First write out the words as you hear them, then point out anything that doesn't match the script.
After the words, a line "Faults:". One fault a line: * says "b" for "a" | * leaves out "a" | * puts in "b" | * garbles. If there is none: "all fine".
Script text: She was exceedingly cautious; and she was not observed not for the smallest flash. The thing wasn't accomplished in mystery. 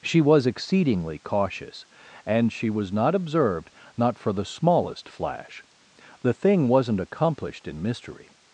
She was exceedingly cautious; and she was not observed not for the smallest flash. The thing wasn't accomplished in mystery.
Faults:
all fine